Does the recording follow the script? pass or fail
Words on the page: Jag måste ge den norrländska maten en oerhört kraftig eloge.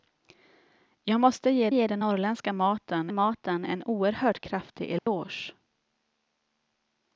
fail